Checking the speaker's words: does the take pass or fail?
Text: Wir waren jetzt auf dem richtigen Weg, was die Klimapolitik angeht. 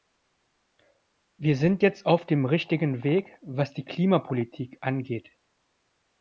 fail